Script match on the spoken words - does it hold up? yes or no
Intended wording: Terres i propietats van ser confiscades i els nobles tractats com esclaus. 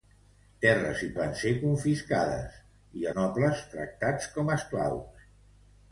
no